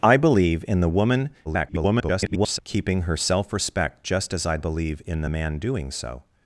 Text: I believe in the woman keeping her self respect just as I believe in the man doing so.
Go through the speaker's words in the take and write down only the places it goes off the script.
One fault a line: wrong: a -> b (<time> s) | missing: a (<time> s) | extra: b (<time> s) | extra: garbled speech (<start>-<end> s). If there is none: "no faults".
extra: garbled speech (1.4-2.6 s)